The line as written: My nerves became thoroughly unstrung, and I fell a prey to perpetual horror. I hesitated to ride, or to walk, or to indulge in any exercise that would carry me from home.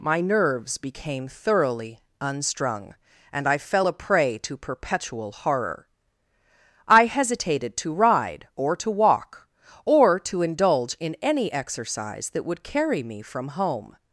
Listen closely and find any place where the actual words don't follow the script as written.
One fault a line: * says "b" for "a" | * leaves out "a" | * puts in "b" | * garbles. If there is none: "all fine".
all fine